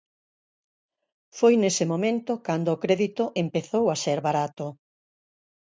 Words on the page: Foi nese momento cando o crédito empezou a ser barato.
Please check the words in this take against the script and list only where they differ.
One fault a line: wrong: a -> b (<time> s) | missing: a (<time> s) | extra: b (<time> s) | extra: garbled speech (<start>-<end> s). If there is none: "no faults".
no faults